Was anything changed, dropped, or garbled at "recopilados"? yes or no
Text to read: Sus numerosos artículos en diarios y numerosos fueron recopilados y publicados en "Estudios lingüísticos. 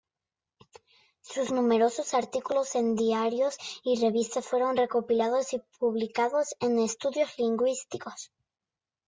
no